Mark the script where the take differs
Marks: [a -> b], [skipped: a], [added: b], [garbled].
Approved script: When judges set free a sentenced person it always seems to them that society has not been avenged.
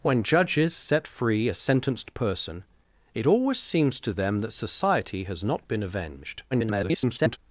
When judges set free a sentenced person it always seems to them that society has not been avenged. [garbled]